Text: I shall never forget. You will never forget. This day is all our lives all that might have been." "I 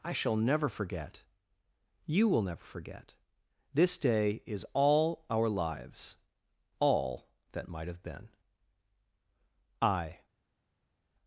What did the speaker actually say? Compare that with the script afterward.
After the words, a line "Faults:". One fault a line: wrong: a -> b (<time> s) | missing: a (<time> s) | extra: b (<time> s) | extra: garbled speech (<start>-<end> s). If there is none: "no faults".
I shall never forget. You will never forget. This day is all our lives all that might have been." "I
Faults:
no faults